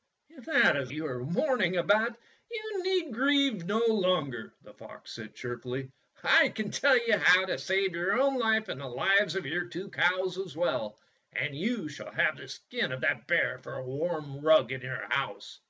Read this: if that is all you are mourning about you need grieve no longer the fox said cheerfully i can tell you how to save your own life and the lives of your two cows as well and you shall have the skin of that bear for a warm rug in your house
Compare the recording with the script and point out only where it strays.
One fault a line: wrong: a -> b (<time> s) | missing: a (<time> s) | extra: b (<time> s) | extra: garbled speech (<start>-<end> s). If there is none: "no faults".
missing: all (0.9 s)